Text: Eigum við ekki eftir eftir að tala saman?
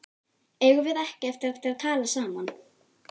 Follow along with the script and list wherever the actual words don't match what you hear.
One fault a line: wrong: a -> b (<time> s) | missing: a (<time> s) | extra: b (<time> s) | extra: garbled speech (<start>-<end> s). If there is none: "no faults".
no faults